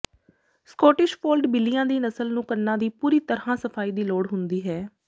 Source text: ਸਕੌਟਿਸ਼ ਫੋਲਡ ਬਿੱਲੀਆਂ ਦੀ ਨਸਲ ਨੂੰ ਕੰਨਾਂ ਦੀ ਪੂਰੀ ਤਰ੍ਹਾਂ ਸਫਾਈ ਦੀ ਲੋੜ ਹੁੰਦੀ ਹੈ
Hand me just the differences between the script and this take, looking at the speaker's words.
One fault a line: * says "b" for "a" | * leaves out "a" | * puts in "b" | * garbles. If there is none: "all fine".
all fine